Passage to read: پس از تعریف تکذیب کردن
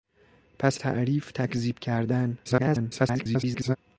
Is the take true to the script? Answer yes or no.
no